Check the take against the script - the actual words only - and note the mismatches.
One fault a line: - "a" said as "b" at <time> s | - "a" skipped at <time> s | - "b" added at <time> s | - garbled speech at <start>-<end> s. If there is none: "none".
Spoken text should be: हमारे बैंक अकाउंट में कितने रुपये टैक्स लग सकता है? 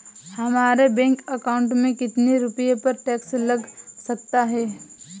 - "पर" added at 2.8 s